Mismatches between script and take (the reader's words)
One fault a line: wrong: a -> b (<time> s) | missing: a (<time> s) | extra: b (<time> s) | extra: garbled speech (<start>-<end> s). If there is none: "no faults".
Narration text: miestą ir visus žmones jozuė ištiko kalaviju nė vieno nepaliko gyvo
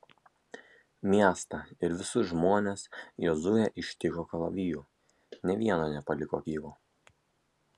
no faults